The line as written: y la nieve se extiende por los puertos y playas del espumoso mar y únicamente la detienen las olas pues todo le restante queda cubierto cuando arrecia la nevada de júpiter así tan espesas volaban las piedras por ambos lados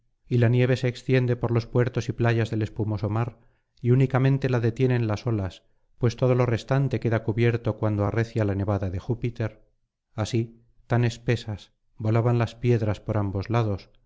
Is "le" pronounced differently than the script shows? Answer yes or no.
yes